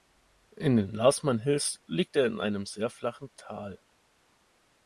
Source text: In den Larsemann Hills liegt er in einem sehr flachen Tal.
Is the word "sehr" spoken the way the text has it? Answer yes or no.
yes